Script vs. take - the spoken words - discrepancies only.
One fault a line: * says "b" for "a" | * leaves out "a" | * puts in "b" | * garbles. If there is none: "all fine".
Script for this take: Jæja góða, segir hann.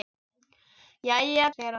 * leaves out "góða"